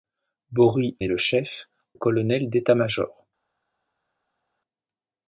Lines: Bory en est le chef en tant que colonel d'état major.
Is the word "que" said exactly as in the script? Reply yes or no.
no